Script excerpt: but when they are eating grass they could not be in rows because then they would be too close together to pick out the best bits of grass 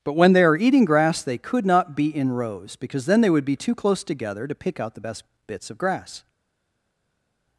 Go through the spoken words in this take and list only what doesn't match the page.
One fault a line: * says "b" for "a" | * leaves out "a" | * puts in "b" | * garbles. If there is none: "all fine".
all fine